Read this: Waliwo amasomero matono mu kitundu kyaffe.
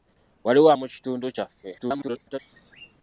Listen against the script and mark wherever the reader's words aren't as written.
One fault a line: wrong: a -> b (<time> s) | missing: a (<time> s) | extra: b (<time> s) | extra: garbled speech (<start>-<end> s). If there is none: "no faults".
missing: amasomero matono (0.7 s)
extra: garbled speech (1.8-2.4 s)